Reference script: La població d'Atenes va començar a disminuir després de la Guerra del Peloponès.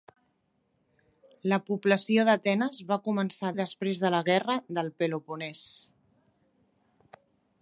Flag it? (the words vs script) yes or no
yes